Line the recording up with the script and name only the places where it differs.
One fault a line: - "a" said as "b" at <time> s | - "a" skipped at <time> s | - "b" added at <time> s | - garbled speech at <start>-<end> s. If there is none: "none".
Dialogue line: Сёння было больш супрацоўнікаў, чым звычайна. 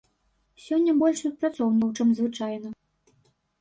- "было" skipped at 0.9 s